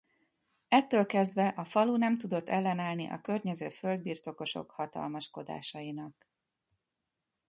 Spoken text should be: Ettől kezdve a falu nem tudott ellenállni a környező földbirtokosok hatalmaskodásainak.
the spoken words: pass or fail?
pass